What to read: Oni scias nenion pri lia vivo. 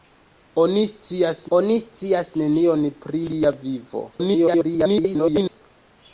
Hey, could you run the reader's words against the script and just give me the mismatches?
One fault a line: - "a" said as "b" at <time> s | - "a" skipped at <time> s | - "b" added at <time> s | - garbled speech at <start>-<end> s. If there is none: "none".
- "oni scias" added at 1.6 s
- garbled speech at 4.1-5.6 s